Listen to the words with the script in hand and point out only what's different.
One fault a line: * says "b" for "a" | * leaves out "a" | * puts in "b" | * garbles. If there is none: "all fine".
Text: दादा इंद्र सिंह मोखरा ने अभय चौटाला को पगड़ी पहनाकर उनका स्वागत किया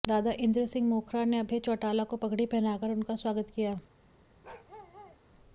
all fine